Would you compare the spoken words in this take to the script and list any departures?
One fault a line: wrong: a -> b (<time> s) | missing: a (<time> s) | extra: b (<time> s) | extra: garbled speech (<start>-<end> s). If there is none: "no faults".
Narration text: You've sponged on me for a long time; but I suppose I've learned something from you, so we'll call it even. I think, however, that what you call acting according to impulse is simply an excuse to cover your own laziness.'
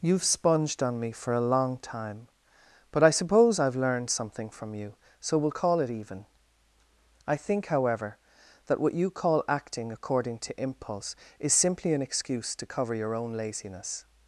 no faults